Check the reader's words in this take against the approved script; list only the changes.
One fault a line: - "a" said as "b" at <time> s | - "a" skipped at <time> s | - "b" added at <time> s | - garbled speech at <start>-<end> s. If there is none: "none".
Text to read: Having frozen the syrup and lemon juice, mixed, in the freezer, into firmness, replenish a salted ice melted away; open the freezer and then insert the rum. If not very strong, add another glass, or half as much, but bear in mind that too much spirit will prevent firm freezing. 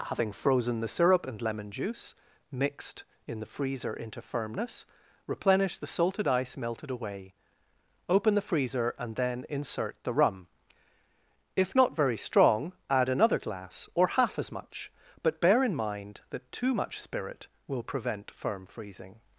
- "a" said as "the" at 5.8 s